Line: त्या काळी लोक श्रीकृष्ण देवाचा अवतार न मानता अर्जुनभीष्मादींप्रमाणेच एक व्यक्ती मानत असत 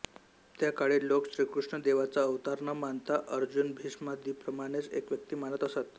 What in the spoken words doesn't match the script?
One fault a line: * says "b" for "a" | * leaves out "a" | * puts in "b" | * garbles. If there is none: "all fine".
all fine